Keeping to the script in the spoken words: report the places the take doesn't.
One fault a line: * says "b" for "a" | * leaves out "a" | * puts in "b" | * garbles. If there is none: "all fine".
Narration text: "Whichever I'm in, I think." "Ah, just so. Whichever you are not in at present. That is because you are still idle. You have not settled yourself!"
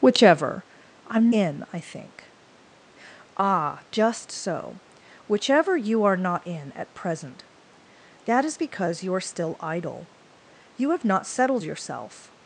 all fine